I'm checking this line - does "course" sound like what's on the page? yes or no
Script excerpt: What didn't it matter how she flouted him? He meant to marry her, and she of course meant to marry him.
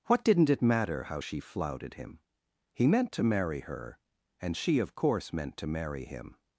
yes